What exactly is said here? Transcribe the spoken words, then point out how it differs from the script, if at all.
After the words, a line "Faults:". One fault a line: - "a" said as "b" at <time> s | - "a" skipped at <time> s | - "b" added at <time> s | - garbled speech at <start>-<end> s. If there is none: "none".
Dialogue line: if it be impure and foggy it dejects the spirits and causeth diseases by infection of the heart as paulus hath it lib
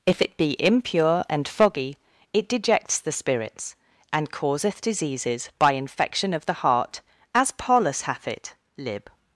if it be impure and foggy it dejects the spirits and causeth diseases by infection of the heart as paulus hath it lib
Faults:
none